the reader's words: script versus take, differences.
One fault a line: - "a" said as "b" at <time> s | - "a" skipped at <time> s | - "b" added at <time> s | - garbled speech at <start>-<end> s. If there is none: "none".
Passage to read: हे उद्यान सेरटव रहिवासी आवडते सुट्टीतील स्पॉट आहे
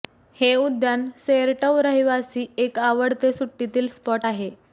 - "एक" added at 2.6 s